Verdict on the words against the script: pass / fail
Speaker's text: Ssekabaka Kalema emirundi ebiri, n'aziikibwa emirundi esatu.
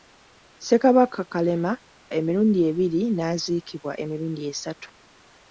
pass